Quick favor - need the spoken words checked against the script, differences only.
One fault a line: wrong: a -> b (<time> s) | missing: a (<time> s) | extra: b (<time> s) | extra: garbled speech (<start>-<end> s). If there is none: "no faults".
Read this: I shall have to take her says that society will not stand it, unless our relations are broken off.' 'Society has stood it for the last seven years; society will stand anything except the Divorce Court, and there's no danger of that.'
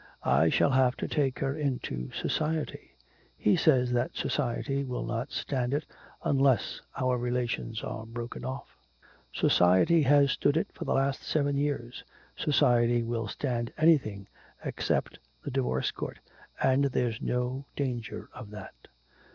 extra: into society He (1.6 s)